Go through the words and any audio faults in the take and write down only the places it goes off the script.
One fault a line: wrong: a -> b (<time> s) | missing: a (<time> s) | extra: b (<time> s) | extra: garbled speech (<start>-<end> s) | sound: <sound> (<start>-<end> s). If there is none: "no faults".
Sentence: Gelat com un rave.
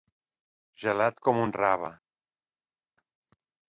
no faults